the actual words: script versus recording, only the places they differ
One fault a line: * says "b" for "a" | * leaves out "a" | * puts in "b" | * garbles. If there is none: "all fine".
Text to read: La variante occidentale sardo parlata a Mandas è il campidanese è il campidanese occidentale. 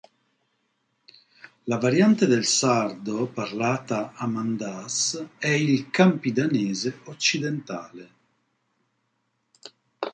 * says "del" for "occidentale"
* leaves out "è il campidanese"